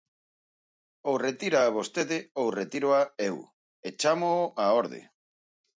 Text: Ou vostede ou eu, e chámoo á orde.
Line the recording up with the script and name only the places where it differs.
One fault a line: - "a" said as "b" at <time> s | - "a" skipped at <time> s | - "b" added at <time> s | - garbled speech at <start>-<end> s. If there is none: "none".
- "retíraa" added at 1.3 s
- "retíroa" added at 2.6 s